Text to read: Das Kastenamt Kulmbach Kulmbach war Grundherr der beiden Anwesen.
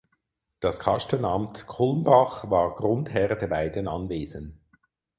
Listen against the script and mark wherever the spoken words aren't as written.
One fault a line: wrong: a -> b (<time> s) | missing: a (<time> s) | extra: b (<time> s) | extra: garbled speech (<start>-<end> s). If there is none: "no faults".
missing: Kulmbach (2.5 s)